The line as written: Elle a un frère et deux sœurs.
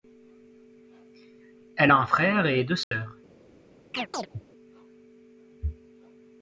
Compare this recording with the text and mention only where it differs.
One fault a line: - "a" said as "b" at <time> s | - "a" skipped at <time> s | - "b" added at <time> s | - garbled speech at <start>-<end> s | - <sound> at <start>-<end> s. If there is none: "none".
- dropout at 2.8-2.9 s
- chirp at 3.9-4.4 s